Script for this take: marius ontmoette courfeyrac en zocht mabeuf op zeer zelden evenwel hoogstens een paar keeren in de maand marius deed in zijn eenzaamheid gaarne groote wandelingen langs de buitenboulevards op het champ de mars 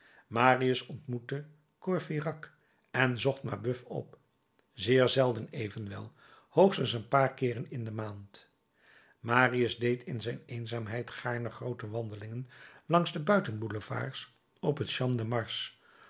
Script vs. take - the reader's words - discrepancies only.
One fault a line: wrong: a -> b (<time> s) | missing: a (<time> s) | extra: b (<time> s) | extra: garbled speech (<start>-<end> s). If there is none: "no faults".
no faults